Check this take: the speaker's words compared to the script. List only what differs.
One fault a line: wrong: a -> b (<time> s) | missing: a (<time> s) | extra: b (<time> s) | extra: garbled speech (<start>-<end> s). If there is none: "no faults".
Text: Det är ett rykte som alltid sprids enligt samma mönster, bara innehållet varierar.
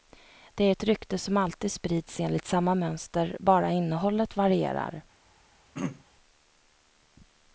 no faults